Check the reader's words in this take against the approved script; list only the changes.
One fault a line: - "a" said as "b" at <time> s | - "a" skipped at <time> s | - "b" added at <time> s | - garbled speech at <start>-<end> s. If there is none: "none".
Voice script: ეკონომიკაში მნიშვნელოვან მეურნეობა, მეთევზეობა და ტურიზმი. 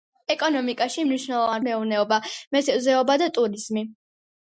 none